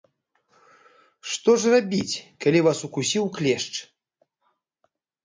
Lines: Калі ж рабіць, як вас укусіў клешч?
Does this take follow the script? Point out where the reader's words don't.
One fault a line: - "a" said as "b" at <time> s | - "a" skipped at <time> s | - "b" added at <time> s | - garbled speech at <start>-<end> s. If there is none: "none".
- "Калі" said as "Што" at 1.3 s
- "як" said as "калі" at 2.5 s